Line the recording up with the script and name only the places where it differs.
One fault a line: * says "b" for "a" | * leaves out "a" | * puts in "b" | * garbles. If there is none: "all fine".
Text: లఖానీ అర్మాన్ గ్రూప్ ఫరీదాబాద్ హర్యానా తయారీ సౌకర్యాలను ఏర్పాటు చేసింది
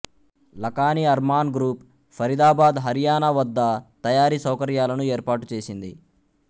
* puts in "వద్ద"